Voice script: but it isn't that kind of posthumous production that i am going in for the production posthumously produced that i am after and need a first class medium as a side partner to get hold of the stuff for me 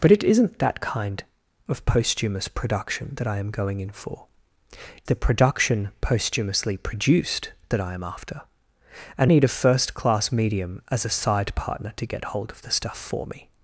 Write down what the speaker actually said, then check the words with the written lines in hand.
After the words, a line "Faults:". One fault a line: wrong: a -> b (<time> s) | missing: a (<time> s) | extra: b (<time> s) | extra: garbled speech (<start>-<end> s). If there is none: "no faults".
but it isn't that kind of posthumous production that i am going in for the production posthumously produced that i am after and need a first class medium as a side partner to get hold of the stuff for me
Faults:
no faults